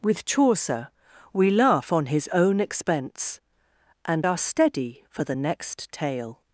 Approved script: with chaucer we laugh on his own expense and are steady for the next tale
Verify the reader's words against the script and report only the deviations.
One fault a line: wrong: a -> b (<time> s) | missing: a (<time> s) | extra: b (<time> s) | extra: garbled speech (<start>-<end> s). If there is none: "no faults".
no faults